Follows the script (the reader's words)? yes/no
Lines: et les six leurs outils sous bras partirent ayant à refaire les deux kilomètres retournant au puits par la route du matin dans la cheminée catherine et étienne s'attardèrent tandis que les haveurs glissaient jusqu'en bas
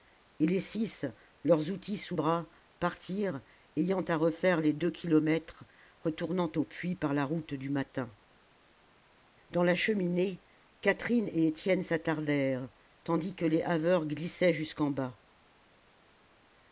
yes